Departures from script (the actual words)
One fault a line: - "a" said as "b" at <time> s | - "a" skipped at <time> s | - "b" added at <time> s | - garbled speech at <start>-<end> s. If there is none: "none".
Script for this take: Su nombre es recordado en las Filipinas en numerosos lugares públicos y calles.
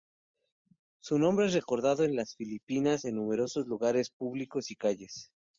none